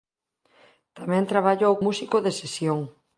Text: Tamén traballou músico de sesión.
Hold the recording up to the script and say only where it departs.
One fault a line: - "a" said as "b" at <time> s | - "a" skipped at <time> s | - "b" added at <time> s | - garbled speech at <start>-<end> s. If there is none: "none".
none